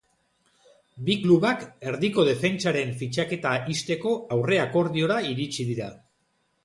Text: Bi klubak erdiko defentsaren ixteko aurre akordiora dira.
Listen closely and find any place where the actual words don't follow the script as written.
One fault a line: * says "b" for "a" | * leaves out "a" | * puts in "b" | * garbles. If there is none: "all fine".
* puts in "fitxaketa"
* puts in "iritsi"